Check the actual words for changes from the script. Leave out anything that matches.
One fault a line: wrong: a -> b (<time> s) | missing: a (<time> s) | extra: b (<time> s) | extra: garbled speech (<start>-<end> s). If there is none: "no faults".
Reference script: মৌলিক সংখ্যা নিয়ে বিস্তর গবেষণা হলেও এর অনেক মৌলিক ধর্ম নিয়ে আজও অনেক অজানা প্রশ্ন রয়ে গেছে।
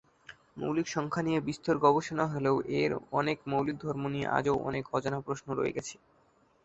no faults